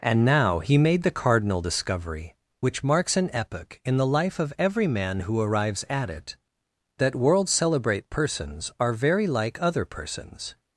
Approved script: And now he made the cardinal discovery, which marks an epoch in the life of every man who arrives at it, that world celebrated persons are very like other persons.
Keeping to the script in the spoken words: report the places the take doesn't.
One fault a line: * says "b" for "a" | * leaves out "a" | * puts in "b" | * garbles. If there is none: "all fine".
* says "celebrate" for "celebrated"